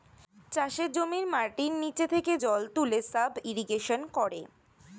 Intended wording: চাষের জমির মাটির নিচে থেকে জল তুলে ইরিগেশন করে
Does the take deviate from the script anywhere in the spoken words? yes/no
yes